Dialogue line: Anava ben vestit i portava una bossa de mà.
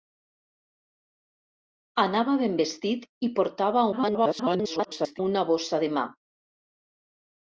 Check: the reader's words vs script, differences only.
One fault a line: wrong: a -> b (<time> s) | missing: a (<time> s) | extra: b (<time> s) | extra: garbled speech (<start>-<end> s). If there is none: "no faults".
extra: garbled speech (3.9-5.2 s)